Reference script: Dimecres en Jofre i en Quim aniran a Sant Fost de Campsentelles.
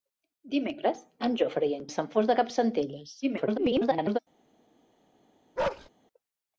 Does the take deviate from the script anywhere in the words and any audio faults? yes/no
yes